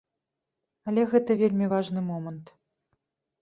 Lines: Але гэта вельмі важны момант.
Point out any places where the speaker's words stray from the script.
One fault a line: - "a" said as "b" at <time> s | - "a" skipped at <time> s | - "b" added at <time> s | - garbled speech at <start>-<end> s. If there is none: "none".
none